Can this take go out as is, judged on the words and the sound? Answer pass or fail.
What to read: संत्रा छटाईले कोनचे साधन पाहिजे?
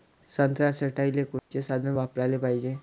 fail